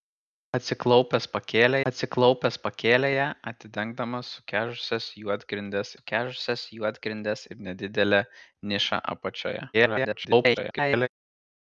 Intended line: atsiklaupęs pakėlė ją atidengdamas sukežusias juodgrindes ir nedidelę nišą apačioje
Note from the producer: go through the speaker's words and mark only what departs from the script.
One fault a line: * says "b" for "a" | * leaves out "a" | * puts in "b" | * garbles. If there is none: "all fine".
* puts in "atsiklaupęs pakėlė"
* puts in "sukežusias juodgrindes"
* garbles